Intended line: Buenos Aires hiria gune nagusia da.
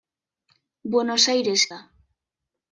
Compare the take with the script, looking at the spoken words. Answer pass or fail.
fail